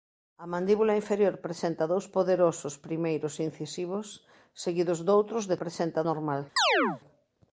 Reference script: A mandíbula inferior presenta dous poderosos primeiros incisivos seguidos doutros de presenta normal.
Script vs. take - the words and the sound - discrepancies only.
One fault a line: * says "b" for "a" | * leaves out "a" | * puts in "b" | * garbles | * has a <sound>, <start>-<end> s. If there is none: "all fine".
* has a chirp, 6.6-7.0 s